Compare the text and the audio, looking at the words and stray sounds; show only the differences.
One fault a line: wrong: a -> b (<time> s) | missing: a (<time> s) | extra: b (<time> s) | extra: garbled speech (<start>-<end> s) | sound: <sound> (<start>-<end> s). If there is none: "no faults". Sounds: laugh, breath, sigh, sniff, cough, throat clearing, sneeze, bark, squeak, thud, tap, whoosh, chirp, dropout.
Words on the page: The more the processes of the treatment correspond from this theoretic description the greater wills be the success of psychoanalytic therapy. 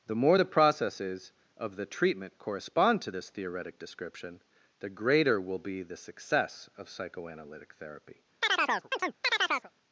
wrong: from -> to (3.0 s)
wrong: wills -> will (5.4 s)
sound: chirp (8.4-9.7 s)